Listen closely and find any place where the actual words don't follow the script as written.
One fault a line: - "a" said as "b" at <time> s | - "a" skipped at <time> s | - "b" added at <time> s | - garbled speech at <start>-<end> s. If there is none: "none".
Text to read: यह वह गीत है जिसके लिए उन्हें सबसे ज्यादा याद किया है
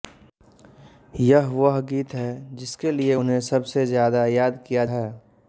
none